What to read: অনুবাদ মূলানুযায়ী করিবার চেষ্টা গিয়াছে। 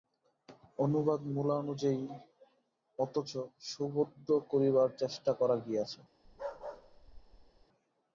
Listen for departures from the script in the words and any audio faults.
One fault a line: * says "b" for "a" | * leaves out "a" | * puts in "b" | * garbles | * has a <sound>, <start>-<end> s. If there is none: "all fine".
* puts in "অথচ সুবোধ্য"
* puts in "করা"
* has a bark, 6.2-7.7 s